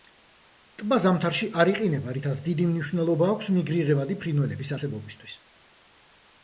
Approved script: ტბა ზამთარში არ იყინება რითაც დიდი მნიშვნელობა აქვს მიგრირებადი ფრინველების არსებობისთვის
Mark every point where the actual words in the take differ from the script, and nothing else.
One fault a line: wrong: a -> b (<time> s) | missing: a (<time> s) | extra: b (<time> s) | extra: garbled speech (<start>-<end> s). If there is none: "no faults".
no faults